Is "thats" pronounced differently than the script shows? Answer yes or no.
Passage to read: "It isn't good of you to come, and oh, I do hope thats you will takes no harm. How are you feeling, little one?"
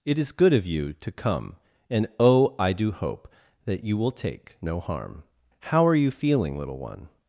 yes